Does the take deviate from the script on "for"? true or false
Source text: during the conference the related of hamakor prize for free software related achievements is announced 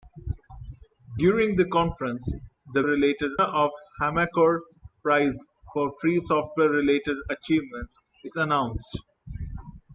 false